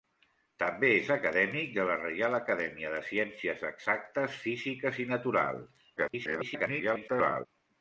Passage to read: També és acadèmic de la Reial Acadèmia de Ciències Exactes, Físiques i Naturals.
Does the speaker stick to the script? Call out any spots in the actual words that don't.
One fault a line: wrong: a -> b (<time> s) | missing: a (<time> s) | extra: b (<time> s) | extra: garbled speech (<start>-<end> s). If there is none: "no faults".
extra: garbled speech (6.0-7.5 s)